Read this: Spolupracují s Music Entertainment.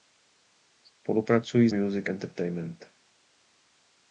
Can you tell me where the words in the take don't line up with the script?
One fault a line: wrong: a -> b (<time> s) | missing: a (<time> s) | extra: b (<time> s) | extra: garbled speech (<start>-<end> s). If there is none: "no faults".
no faults